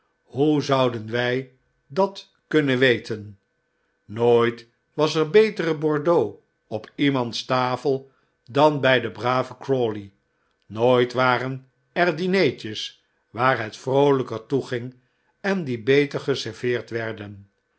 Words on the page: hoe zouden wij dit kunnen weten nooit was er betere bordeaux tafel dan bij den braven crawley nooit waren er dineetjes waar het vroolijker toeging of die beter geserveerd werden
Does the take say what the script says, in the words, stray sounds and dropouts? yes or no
no